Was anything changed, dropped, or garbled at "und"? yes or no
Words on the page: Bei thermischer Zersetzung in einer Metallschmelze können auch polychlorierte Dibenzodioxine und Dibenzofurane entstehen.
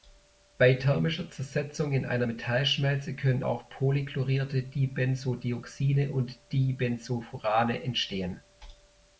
no